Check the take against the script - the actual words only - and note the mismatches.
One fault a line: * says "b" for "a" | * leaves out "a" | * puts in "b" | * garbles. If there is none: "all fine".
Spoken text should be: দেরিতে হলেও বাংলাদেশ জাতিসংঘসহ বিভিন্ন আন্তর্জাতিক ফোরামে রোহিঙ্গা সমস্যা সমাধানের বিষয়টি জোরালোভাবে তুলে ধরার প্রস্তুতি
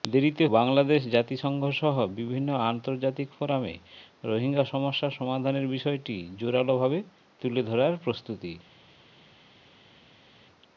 * leaves out "হলেও"